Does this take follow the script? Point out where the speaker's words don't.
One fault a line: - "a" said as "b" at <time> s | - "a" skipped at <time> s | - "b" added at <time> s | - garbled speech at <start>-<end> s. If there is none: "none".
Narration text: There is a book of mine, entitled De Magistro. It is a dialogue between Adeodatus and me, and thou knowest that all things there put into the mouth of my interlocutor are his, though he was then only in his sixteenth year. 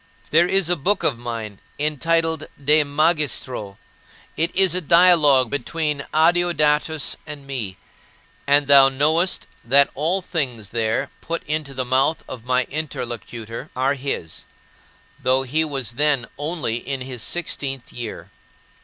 none